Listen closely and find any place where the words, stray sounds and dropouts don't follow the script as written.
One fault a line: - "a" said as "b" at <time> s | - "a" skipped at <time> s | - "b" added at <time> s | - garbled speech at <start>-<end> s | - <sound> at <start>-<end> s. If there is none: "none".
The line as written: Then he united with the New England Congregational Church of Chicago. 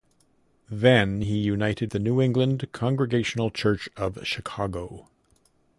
- "with" skipped at 1.9 s